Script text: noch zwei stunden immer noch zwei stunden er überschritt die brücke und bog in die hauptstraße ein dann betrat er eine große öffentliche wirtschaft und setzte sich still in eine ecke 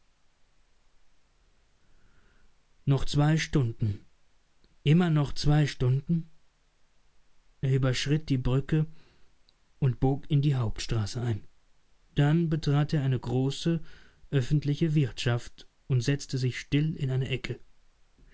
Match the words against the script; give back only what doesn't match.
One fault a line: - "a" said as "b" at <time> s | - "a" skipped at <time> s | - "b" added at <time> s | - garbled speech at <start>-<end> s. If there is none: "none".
none